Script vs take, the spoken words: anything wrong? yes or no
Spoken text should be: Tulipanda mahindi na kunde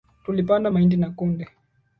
no